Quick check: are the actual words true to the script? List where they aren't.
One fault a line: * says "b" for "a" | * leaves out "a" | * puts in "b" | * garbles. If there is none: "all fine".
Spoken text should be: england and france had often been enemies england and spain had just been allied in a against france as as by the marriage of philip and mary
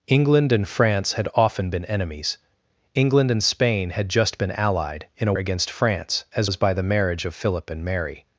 all fine